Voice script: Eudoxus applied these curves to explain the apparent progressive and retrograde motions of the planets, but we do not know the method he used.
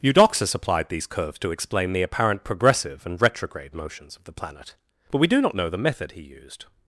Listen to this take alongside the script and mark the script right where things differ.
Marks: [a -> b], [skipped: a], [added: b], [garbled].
Eudoxus applied these curves to explain the apparent progressive and retrograde motions of the [planets, -> planet] but we do not know the method he used.